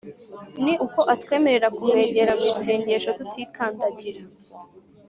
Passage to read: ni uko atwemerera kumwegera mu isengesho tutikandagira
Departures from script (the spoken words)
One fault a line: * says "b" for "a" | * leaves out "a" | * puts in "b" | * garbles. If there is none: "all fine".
all fine